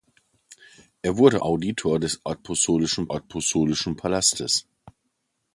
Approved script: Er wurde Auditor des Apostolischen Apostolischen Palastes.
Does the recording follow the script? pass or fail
pass